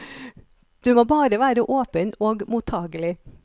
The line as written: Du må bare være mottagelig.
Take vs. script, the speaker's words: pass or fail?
fail